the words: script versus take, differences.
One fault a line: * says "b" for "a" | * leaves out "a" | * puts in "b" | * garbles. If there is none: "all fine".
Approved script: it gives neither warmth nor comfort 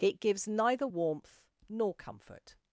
all fine